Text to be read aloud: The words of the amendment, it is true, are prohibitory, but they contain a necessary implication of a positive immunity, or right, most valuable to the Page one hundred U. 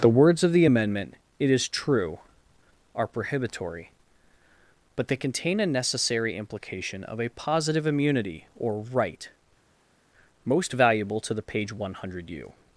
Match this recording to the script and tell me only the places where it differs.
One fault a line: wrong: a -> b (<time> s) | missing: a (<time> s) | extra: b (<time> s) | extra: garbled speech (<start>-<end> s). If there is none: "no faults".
no faults